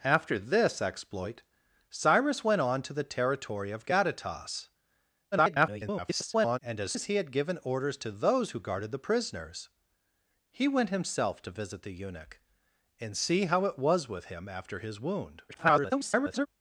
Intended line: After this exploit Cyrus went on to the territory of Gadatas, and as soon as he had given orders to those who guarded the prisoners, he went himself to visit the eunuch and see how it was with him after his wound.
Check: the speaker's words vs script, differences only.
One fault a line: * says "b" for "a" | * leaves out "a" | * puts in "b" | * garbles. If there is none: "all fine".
* garbles
* leaves out "soon"
* garbles